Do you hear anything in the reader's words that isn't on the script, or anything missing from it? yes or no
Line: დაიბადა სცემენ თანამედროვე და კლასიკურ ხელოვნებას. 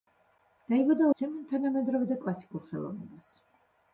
no